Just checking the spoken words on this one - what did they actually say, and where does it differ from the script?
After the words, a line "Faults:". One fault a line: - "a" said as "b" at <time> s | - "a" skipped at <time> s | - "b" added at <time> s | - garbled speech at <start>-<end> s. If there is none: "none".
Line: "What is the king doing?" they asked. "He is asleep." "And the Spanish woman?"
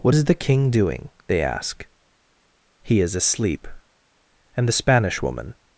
"What is the king doing?" they ask. "He is asleep." "And the Spanish woman?"
Faults:
- "asked" said as "ask" at 1.4 s